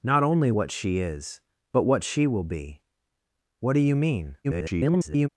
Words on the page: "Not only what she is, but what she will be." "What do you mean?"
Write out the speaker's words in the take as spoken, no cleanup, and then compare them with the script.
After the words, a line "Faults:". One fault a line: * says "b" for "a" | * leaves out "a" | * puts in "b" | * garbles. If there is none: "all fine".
"Not only what she is, but what she will be." "What do you mean?" [garbled]
Faults:
* garbles